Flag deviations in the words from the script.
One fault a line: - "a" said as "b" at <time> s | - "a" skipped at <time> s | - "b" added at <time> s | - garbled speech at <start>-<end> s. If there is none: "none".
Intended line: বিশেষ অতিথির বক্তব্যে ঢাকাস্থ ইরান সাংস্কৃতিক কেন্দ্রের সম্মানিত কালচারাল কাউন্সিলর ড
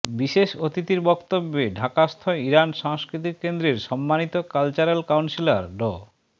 none